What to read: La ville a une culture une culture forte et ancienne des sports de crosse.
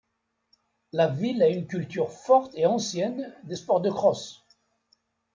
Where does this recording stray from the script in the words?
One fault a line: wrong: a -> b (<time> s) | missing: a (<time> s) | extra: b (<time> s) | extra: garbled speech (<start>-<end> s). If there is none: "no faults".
missing: une culture (2.1 s)